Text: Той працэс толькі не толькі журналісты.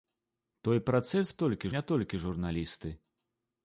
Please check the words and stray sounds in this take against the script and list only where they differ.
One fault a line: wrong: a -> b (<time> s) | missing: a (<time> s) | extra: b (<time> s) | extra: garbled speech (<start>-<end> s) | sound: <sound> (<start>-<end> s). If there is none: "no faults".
no faults